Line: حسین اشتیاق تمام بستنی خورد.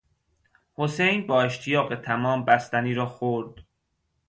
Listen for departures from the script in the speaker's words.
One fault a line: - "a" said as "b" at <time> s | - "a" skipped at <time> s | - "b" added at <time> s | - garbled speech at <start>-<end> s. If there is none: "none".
- "با" added at 1.2 s
- "را" added at 2.9 s